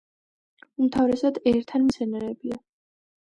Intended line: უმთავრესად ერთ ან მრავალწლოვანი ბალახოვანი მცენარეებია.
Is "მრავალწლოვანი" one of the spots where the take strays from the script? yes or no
yes